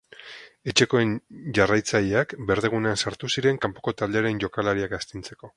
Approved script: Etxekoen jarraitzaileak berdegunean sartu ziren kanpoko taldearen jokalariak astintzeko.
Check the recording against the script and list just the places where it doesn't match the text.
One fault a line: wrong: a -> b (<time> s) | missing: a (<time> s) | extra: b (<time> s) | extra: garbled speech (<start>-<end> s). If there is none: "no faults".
no faults